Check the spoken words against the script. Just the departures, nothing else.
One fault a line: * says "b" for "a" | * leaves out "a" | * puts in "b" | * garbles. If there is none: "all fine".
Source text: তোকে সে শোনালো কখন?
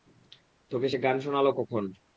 * puts in "গান"